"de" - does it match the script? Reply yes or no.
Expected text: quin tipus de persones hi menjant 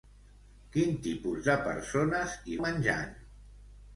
yes